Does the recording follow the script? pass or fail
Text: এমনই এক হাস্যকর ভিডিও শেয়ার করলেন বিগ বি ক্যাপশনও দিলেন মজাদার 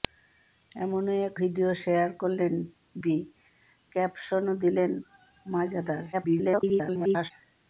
fail